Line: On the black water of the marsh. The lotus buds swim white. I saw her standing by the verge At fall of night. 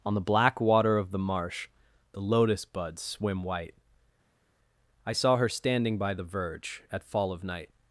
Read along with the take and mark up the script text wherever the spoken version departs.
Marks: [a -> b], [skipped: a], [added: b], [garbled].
On the black water of the marsh. The lotus buds swim white. I saw her standing by the verge At fall of night.